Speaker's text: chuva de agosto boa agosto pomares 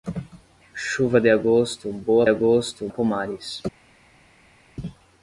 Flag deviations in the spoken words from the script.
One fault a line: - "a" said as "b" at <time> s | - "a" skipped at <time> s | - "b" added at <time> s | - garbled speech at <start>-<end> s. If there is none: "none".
none